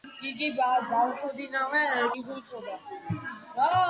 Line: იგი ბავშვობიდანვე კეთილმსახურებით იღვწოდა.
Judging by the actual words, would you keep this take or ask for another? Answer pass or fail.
fail